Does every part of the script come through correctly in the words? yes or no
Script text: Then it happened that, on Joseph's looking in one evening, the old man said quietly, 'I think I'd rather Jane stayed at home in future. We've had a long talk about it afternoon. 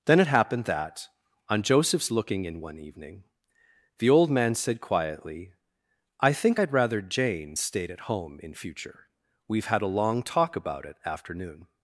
yes